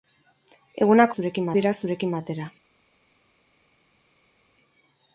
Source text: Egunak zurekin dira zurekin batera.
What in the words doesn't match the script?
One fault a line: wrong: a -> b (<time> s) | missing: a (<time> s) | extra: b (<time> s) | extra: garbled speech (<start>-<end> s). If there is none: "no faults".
no faults